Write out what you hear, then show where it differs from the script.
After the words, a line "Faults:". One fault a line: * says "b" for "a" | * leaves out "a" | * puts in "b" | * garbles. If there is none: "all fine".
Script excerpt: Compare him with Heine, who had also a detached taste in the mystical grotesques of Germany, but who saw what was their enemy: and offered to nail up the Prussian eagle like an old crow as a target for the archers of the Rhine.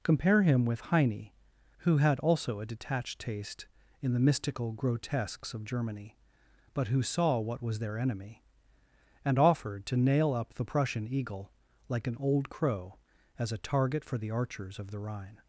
Compare him with Heine, who had also a detached taste in the mystical grotesques of Germany, but who saw what was their enemy: and offered to nail up the Prussian eagle like an old crow as a target for the archers of the Rhine.
Faults:
all fine